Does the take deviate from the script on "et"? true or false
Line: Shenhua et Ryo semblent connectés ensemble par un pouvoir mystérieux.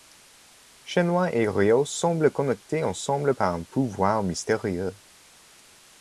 false